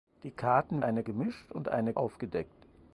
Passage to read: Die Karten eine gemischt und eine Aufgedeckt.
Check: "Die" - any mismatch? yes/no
no